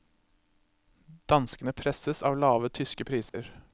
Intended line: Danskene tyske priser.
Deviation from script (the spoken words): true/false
true